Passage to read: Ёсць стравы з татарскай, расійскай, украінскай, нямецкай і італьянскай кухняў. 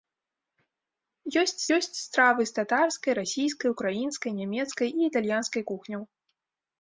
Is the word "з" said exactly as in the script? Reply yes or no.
yes